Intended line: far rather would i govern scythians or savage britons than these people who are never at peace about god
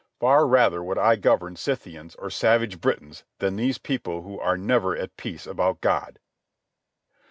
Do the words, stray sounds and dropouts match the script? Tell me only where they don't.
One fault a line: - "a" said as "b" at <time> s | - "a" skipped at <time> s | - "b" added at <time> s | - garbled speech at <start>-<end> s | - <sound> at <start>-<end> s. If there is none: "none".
none